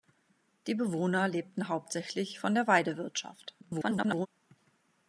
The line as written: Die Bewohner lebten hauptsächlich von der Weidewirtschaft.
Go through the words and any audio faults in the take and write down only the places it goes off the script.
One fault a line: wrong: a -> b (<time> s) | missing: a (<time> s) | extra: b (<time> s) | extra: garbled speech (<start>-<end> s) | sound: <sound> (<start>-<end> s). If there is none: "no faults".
extra: garbled speech (3.6-4.3 s)